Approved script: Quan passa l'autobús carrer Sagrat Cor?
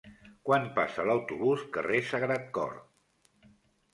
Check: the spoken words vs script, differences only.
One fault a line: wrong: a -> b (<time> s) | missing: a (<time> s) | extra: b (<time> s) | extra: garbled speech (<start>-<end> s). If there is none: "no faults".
no faults